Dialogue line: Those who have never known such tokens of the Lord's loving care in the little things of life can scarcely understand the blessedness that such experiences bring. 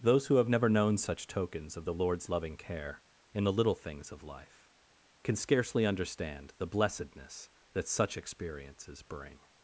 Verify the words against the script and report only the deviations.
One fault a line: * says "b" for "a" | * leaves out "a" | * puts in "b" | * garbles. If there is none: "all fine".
all fine